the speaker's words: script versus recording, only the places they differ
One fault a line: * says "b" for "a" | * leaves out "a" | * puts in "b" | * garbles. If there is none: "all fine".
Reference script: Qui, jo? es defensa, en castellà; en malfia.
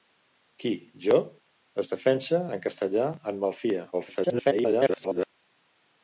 * garbles